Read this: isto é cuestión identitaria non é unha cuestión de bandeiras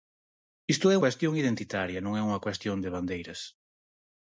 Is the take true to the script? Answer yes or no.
yes